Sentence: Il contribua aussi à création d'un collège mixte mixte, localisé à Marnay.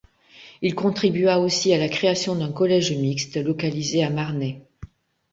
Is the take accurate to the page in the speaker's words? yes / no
no